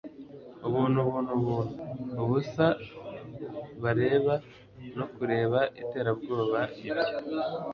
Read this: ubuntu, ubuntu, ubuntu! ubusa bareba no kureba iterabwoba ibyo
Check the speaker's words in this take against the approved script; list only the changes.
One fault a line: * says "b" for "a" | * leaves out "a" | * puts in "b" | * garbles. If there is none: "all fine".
all fine